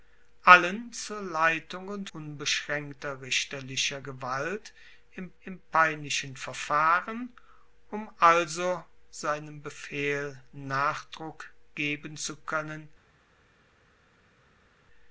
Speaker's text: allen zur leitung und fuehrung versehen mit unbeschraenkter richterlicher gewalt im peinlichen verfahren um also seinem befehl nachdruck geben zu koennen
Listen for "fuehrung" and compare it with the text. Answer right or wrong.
wrong